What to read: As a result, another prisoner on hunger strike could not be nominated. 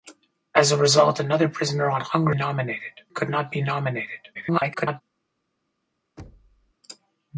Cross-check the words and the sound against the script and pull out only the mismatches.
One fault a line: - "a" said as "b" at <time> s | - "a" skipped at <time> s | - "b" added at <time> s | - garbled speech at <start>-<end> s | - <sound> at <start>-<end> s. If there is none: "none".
- "strike" said as "nominated" at 2.3 s
- garbled speech at 4.3-5.0 s
- thud at 6.2-6.7 s